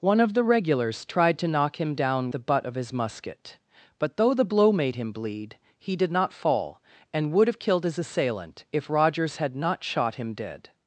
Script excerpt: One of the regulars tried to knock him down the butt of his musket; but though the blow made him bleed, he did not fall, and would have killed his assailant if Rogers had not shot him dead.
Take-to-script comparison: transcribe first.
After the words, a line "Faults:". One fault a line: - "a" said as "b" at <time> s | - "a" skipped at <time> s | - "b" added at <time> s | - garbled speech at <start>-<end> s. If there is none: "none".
One of the regulars tried to knock him down the butt of his musket; but though the blow made him bleed, he did not fall, and would have killed his assailant if Rogers had not shot him dead.
Faults:
none